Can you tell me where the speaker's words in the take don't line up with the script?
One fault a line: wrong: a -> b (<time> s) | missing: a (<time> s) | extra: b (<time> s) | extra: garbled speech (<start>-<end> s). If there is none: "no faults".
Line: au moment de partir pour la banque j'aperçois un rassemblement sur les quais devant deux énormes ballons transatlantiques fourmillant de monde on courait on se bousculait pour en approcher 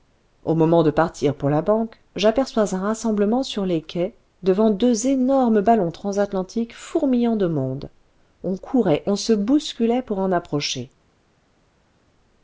no faults